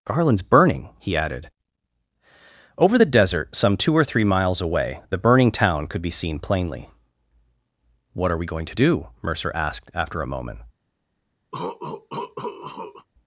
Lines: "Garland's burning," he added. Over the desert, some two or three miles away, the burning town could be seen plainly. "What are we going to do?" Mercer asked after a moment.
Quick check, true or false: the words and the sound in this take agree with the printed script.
false